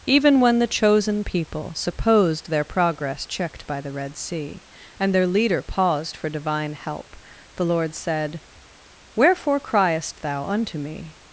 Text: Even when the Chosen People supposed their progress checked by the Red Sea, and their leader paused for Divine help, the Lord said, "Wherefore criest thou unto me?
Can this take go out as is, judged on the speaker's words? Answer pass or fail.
pass